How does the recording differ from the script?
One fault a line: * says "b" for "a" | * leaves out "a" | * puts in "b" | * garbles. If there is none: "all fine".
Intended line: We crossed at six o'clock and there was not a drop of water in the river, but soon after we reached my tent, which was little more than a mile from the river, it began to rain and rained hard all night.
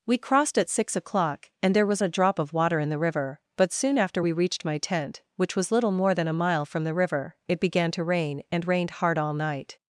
* leaves out "not"